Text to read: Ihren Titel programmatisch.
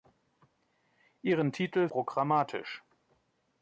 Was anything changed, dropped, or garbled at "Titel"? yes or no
no